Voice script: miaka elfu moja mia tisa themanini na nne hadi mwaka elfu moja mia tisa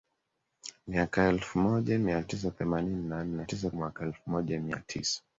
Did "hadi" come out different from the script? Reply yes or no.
yes